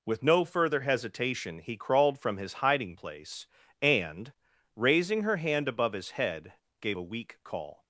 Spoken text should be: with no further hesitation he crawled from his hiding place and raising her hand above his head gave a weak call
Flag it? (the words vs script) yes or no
no